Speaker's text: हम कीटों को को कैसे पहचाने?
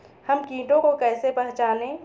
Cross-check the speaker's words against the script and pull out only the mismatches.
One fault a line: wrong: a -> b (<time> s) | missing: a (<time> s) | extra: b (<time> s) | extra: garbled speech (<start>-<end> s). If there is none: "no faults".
missing: को (0.9 s)